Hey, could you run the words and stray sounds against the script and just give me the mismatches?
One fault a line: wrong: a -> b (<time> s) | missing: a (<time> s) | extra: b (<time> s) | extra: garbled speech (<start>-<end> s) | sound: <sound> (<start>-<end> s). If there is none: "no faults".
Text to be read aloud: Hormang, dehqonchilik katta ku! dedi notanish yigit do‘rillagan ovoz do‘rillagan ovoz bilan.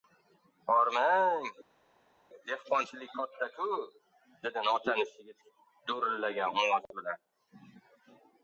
missing: do‘rillagan ovoz (6.9 s)